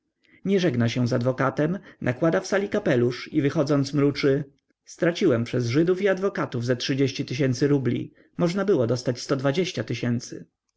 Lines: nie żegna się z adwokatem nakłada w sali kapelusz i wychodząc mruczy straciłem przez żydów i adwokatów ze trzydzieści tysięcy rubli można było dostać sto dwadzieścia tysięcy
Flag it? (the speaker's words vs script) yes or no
no